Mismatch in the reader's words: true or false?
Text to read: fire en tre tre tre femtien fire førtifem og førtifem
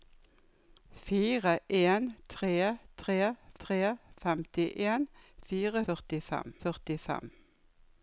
false